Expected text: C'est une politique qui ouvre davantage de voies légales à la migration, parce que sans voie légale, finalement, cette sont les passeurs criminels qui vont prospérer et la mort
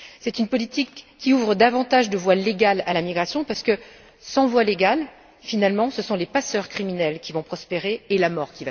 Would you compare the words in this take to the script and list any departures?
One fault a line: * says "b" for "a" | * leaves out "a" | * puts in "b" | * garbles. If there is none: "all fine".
* says "ce" for "cette"